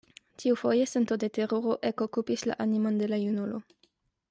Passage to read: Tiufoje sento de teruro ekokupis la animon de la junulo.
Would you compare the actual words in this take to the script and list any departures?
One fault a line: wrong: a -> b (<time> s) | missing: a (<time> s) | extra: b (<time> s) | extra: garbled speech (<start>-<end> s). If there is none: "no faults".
no faults